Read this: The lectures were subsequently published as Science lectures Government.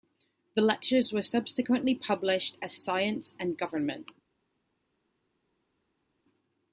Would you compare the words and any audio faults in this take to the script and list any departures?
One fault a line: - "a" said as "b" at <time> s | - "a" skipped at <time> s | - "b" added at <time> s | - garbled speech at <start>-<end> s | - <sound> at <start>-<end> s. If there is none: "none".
- "lectures" said as "and" at 3.4 s